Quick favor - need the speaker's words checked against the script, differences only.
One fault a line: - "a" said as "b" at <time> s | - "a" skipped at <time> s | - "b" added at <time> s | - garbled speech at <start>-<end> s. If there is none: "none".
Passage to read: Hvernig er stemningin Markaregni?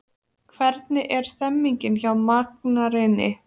- "hjá" added at 2.0 s